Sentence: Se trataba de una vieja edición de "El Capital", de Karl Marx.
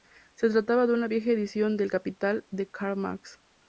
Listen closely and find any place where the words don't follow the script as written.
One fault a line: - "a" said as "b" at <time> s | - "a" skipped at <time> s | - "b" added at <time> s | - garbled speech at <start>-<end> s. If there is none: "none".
none